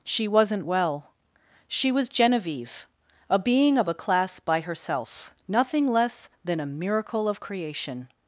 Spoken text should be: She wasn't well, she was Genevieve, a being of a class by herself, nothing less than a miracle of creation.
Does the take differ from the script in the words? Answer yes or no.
no